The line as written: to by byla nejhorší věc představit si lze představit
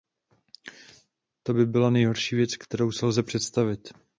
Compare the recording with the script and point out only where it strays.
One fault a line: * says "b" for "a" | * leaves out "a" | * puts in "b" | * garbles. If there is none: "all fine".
* says "kterou" for "představit"